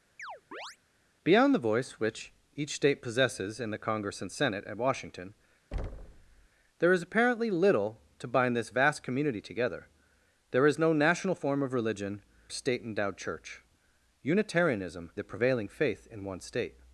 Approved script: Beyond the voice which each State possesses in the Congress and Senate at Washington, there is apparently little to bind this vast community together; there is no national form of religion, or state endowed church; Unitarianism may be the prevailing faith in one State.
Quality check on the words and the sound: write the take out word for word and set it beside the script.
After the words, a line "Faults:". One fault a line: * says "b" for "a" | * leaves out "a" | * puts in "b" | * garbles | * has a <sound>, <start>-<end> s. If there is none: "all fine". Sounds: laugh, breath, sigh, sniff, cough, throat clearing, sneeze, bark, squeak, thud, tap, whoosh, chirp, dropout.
Beyond the voice which each State possesses in the Congress and Senate at Washington, there is apparently little to bind this vast community together; there is no national form of religion, state endowed church; Unitarianism the prevailing faith in one State.
Faults:
* has a chirp, 0.2-0.8 s
* has a thud, 5.7-6.5 s
* leaves out "or"
* leaves out "may be"